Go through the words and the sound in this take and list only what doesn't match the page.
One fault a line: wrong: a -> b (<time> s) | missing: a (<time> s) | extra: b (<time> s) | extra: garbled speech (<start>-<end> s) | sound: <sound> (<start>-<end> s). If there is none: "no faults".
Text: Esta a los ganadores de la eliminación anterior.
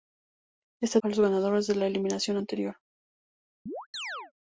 sound: chirp (3.7-4.3 s)